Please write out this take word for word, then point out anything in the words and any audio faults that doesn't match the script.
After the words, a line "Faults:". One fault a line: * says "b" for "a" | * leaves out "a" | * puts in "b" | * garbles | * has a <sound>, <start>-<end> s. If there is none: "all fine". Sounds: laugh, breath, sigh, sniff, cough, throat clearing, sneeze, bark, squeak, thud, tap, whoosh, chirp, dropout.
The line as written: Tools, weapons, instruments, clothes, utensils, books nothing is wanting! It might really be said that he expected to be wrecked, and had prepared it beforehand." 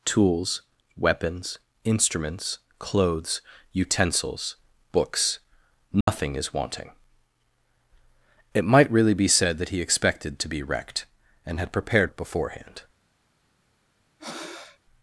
Tools, weapons, instruments, clothes, utensils, books nothing is wanting! It might really be said that he expected to be wrecked, and had prepared it beforehand."
Faults:
* has a dropout, 6.0-6.1 s
* has a breath, 14.2-14.8 s